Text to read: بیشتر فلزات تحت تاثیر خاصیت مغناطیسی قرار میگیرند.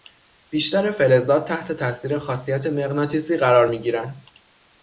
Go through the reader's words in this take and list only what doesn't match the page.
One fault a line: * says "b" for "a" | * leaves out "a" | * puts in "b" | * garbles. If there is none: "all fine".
all fine